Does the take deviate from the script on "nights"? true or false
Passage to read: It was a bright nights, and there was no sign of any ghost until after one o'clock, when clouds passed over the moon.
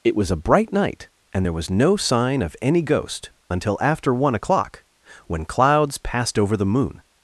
true